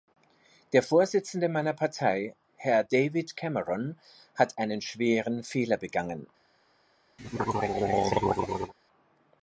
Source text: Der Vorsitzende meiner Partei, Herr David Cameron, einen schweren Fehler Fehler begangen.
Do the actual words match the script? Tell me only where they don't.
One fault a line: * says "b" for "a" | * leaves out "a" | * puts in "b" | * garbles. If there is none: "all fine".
* puts in "hat"
* leaves out "Fehler"